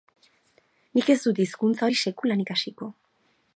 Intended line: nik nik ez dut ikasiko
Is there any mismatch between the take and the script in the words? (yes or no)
yes